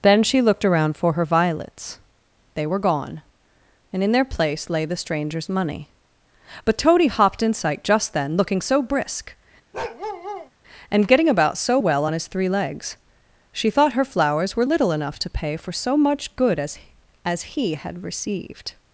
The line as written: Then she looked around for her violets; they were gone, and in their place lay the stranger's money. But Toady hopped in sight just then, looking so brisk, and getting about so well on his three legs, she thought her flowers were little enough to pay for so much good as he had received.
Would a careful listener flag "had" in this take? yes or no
no